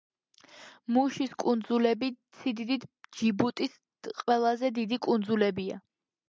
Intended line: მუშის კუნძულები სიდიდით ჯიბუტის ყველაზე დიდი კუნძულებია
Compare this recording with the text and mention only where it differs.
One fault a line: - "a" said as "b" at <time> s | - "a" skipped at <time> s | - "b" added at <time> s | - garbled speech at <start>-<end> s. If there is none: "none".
none